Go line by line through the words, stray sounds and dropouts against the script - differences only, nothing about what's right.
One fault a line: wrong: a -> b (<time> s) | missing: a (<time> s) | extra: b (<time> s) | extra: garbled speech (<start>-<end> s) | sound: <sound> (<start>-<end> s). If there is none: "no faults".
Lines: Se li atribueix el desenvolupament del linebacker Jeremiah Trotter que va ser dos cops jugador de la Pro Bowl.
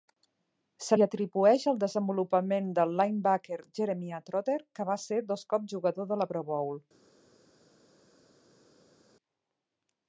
no faults